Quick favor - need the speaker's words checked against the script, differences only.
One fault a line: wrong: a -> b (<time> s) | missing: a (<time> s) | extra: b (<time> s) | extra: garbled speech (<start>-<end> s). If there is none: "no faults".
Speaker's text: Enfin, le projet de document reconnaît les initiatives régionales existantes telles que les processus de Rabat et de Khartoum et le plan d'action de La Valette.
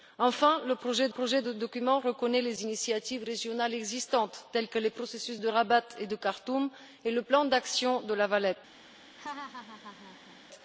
extra: projet (1.1 s)